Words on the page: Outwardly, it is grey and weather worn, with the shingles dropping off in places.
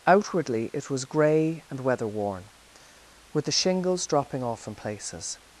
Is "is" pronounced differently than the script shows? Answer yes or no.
yes